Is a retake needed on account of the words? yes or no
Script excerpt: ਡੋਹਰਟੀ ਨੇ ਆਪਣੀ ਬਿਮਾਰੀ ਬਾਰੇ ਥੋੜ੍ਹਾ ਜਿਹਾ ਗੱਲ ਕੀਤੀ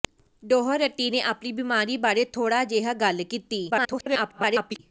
yes